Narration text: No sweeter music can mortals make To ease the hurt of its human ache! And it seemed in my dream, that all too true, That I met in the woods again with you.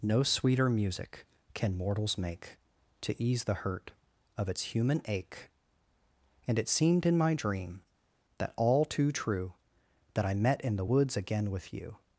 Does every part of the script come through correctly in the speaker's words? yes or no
yes